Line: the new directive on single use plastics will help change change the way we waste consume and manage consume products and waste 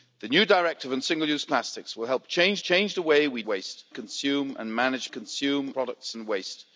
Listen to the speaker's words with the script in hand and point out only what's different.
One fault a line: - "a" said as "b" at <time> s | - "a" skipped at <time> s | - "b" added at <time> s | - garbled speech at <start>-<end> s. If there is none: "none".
none